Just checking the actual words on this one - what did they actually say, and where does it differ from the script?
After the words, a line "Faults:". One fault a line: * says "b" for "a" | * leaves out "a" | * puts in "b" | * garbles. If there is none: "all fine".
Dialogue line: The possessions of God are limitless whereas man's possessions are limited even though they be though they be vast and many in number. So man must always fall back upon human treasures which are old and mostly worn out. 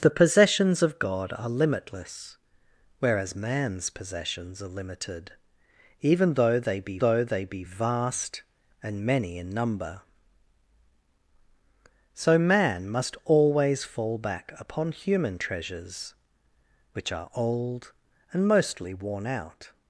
The possessions of God are limitless whereas man's possessions are limited even though they be though they be vast and many in number. So man must always fall back upon human treasures which are old and mostly worn out.
Faults:
all fine